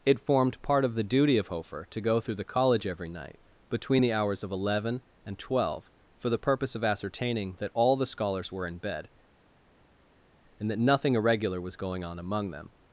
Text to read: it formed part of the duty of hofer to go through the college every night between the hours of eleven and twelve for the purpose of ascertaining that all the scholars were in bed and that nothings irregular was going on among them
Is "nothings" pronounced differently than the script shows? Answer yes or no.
yes